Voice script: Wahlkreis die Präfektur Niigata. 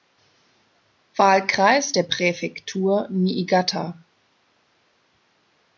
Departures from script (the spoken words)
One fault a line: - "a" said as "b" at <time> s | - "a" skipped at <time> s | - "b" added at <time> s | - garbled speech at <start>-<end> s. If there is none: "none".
- "die" said as "der" at 1.9 s